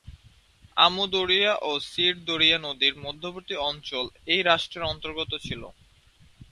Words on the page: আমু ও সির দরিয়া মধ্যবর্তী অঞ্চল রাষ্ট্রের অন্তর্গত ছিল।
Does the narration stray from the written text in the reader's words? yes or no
yes